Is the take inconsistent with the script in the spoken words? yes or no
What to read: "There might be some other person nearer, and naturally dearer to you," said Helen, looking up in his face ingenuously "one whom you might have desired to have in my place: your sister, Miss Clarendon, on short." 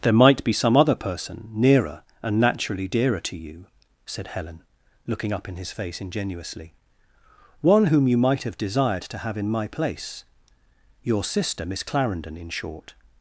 yes